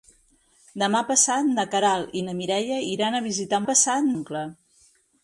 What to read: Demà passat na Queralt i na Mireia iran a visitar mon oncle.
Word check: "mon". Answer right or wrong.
wrong